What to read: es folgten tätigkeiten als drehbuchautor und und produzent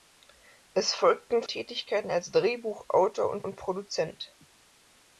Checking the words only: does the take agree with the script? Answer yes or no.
yes